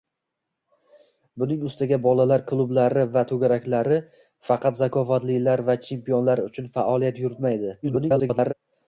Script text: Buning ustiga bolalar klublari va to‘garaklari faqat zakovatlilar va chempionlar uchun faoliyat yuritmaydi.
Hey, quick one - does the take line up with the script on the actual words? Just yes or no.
no